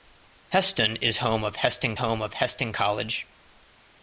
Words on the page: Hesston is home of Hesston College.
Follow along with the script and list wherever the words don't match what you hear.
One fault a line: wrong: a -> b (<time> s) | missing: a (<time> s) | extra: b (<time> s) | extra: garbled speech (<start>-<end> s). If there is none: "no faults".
extra: home of Hesston (2.0 s)